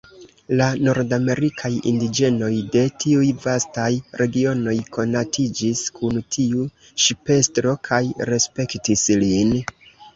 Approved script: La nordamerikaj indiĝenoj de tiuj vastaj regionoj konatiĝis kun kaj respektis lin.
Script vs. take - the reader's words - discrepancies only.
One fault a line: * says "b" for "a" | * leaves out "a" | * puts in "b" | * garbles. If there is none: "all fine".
* puts in "tiu ŝipestro"